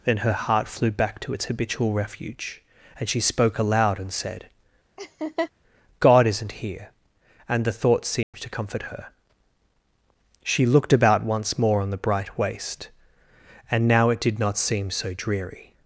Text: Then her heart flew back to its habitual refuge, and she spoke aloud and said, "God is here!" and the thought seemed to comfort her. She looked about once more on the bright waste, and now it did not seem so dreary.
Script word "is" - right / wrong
wrong